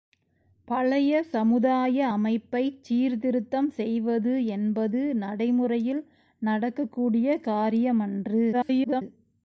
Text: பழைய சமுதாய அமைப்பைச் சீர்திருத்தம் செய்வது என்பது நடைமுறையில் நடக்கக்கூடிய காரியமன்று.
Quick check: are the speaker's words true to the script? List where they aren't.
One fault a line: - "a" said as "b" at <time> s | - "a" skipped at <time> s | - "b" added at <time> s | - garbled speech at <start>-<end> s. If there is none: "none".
- garbled speech at 8.5-9.0 s